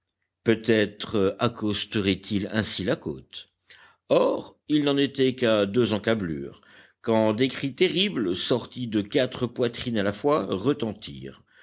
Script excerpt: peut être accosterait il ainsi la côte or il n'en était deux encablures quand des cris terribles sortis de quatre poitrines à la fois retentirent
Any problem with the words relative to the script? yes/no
yes